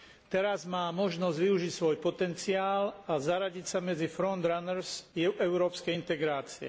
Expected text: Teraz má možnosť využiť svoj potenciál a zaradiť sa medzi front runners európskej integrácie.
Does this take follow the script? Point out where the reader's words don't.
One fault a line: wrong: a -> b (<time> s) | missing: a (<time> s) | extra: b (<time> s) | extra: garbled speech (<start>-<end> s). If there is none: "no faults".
no faults